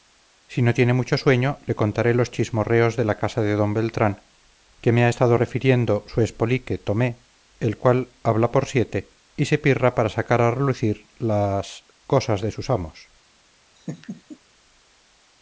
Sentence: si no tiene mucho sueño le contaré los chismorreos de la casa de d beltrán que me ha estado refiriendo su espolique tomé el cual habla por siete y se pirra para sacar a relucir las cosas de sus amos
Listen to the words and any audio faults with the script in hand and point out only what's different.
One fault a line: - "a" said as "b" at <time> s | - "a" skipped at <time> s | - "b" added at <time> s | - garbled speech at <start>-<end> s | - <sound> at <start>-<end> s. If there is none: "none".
- laugh at 13.8-14.4 s